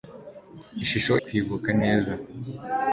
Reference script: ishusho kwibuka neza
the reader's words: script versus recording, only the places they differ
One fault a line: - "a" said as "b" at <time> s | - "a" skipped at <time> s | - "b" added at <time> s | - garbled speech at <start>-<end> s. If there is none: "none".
none